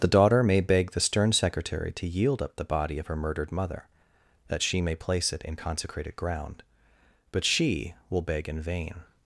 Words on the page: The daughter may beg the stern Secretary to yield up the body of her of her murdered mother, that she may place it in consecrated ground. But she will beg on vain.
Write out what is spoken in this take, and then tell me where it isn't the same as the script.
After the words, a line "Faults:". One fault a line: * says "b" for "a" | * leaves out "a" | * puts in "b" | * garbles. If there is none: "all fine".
The daughter may beg the stern Secretary to yield up the body of her murdered mother, that she may place it in consecrated ground. But she will beg in vain.
Faults:
* leaves out "of her"
* says "in" for "on"